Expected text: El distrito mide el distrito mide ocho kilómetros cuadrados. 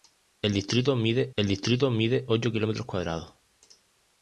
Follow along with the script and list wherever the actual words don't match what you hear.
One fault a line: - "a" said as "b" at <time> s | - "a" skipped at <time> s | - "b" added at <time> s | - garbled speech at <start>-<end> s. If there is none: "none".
none